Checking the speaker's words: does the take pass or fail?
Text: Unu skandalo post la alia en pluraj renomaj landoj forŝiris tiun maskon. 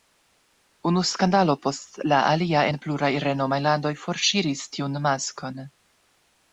pass